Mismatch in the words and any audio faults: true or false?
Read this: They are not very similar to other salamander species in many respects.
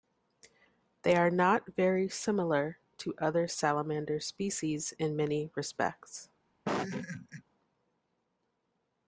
true